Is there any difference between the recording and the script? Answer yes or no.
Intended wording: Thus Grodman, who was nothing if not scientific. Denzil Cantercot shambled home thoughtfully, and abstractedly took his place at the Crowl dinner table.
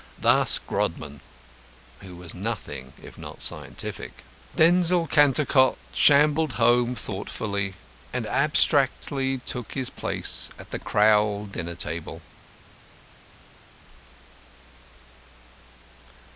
no